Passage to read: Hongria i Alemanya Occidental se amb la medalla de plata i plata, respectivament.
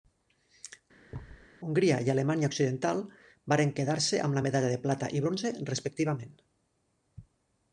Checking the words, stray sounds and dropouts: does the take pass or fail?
fail